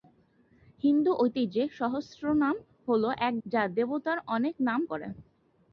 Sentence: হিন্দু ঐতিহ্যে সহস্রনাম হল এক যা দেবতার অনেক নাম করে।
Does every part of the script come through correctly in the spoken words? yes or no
yes